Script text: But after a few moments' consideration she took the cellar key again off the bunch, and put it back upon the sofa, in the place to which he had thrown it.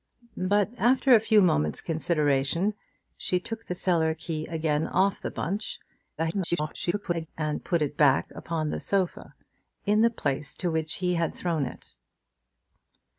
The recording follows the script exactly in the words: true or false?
false